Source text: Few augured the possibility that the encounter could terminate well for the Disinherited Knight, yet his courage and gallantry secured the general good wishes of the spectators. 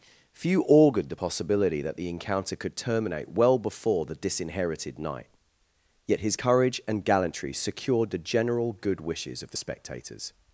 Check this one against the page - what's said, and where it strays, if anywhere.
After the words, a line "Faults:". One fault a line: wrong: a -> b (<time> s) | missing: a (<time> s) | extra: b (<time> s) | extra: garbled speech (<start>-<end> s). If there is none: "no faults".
Few augured the possibility that the encounter could terminate well before the Disinherited Knight, yet his courage and gallantry secured the general good wishes of the spectators.
Faults:
wrong: for -> before (3.6 s)